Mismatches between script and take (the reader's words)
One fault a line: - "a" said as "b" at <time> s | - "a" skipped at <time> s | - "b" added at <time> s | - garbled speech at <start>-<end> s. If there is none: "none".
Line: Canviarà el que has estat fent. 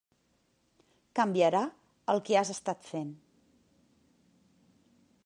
none